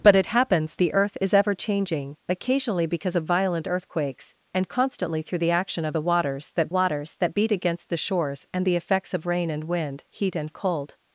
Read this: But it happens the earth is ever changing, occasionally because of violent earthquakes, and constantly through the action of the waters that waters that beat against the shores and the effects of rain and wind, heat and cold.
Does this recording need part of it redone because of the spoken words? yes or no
no